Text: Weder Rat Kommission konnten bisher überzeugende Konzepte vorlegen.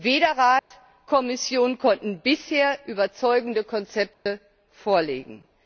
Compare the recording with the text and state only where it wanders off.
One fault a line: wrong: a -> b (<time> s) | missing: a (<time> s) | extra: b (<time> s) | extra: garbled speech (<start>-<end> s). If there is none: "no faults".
no faults